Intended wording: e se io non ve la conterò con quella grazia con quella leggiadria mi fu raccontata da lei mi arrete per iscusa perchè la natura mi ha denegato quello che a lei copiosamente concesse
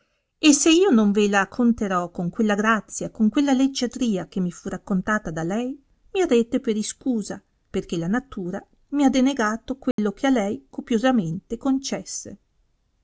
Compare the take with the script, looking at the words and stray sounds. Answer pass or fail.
fail